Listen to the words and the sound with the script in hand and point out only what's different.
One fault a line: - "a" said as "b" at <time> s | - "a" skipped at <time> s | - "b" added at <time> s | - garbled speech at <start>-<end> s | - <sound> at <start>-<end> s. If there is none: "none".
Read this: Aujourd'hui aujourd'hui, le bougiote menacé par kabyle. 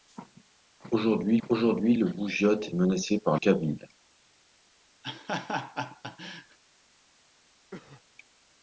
- laugh at 5.0-6.6 s
- cough at 7.7-8.0 s